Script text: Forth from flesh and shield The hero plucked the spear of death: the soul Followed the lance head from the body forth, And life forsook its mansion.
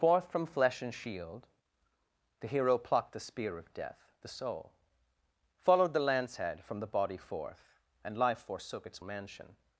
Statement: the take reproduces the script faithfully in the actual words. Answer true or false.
true